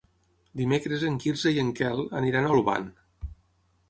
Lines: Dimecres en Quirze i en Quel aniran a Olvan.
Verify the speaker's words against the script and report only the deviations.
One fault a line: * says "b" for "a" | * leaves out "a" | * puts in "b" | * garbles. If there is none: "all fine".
all fine